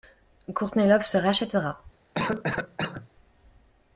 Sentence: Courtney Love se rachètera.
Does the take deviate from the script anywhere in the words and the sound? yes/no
yes